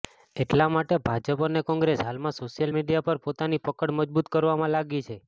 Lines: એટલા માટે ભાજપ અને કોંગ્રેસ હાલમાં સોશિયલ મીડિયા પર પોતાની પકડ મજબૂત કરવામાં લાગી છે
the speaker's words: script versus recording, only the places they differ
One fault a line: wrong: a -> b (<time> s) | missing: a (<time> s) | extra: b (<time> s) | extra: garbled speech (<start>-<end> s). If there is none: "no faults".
no faults